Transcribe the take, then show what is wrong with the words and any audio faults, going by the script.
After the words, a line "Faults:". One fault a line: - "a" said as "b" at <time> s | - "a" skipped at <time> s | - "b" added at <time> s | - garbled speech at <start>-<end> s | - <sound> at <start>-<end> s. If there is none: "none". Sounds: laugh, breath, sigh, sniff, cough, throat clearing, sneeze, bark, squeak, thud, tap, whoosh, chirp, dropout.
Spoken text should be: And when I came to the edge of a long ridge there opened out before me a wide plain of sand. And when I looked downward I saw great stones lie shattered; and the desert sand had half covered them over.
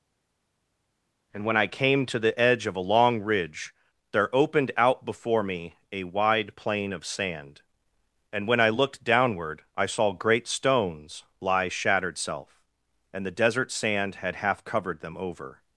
And when I came to the edge of a long ridge there opened out before me a wide plain of sand. And when I looked downward I saw great stones lie shattered; self and the desert sand had half covered them over.
Faults:
- "self" added at 12.2 s